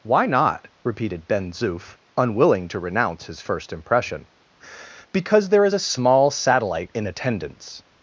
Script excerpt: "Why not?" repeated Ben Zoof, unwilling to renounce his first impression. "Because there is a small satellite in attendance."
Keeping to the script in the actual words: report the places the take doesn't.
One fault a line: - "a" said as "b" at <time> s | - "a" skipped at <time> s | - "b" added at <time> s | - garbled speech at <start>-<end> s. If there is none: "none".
none